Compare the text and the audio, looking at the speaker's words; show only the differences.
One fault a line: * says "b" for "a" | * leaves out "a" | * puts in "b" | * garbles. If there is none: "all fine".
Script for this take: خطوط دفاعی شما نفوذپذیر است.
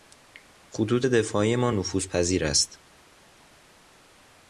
* says "ما" for "شما"